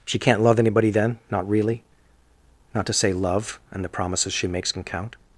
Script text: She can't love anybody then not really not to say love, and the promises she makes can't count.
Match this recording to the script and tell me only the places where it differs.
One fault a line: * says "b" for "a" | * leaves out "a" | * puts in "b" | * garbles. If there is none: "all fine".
* says "can" for "can't"